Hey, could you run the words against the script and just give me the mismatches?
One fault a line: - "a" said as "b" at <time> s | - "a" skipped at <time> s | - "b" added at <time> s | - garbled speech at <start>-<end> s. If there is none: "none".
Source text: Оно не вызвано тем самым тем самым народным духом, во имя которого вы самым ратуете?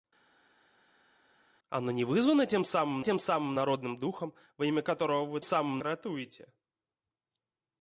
none